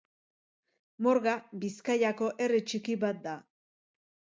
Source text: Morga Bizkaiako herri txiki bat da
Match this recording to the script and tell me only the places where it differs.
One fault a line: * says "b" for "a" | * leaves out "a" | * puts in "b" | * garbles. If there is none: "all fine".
all fine